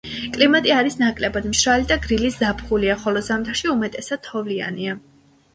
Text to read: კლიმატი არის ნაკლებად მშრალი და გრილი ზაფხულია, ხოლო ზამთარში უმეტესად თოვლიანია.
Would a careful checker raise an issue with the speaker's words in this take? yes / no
no